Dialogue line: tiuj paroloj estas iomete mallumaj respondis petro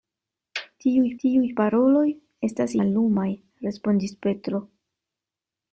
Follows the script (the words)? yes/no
no